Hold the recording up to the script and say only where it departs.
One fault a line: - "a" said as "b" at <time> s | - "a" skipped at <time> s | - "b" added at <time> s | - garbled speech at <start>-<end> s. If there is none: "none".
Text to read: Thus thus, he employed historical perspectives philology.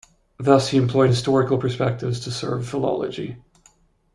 - "thus" skipped at 0.7 s
- "to serve" added at 2.2 s